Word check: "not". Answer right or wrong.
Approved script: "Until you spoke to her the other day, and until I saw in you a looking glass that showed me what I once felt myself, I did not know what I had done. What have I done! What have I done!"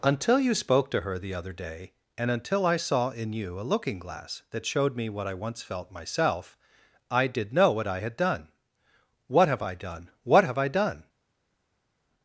wrong